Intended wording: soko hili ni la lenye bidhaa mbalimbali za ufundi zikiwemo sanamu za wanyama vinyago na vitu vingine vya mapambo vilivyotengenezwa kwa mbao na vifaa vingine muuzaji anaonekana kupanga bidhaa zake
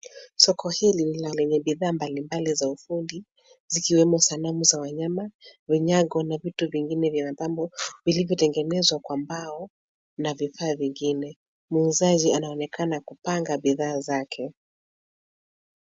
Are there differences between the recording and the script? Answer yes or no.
no